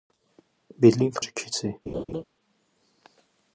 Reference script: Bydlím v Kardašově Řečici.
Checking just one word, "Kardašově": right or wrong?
wrong